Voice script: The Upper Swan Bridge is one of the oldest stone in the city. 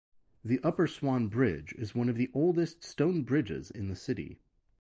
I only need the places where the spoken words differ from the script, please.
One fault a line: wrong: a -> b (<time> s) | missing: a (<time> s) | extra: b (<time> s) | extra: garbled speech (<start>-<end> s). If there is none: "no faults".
extra: bridges (3.2 s)